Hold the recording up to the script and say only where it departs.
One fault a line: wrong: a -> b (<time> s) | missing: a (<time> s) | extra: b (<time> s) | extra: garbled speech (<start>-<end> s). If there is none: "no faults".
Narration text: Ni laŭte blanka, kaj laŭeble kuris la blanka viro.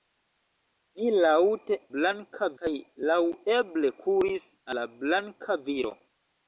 no faults